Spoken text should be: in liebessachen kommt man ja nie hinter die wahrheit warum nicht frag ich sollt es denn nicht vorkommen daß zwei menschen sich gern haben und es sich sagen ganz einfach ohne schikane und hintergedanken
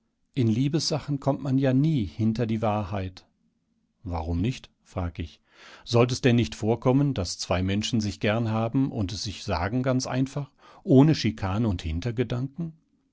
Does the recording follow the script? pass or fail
pass